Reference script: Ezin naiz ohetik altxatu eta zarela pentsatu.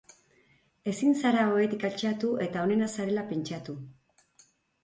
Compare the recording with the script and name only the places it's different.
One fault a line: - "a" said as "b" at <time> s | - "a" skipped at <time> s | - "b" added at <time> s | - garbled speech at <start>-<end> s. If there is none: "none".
- "naiz" said as "zara" at 1.2 s
- "onena" added at 2.7 s